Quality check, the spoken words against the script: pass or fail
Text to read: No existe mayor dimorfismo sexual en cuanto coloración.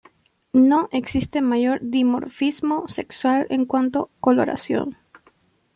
pass